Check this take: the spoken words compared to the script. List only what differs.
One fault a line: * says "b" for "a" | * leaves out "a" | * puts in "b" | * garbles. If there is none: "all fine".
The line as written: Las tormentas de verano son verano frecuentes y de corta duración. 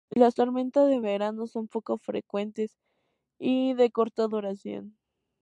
* says "poco" for "verano"